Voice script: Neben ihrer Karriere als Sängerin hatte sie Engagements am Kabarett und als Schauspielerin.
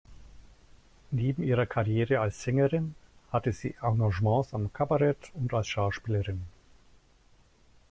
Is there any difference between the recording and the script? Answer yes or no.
no